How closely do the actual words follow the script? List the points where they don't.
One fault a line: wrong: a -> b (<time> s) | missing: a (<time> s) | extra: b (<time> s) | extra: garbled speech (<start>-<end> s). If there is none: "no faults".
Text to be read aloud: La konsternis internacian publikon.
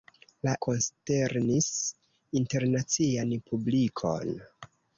no faults